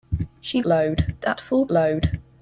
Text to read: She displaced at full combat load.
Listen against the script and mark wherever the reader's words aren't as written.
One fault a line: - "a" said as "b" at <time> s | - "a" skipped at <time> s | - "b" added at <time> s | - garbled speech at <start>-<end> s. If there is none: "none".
- "displaced" said as "load" at 0.6 s
- "combat" skipped at 1.7 s